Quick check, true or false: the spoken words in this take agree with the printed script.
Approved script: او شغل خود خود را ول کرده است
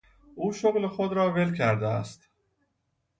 false